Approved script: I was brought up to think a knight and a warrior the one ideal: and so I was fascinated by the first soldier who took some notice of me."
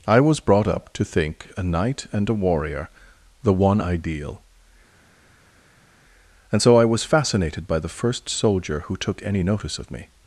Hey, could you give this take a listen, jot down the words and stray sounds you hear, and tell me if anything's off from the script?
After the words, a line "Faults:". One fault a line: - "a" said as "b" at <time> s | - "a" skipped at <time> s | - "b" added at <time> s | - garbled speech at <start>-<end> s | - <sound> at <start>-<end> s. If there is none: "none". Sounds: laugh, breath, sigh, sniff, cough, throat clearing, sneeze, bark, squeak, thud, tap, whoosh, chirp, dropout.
I was brought up to think a knight and a warrior the one ideal: and so I was fascinated by the first soldier who took any notice of me."
Faults:
- "some" said as "any" at 9.2 s